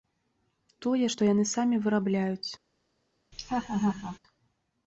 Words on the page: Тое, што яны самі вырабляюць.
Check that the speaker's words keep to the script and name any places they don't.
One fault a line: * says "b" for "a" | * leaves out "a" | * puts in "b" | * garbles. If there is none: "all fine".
all fine